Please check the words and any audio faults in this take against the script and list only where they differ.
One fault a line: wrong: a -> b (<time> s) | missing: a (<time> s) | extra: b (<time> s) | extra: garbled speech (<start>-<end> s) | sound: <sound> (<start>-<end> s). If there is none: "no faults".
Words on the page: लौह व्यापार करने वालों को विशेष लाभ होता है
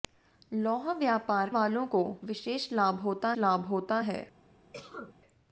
missing: करने (1.5 s)
extra: लाभ होता (3.4 s)
sound: cough (4.7-5.2 s)